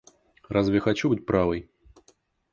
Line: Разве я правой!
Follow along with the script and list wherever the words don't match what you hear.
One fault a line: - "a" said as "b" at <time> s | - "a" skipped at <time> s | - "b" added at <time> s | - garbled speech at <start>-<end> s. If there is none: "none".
- "хочу быть" added at 0.8 s